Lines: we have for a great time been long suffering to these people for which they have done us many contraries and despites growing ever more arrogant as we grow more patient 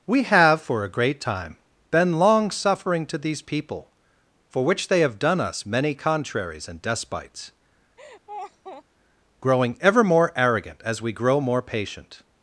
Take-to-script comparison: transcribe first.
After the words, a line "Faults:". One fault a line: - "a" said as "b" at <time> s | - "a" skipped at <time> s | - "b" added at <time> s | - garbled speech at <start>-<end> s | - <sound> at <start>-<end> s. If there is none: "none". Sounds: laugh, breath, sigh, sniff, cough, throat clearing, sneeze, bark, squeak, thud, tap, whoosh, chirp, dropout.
we have for a great time been long suffering to these people for which they have done us many contraries and despites growing ever more arrogant as we grow more patient
Faults:
- laugh at 8.0-8.8 s